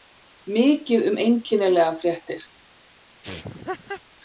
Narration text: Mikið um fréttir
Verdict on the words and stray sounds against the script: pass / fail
fail